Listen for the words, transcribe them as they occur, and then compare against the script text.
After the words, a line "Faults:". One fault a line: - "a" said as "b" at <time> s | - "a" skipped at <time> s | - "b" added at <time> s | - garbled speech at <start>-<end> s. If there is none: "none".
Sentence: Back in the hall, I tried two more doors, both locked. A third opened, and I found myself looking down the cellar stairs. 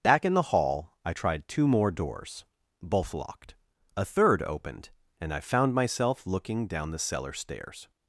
Back in the hall, I tried two more doors, both locked. A third opened, and I found myself looking down the cellar stairs.
Faults:
none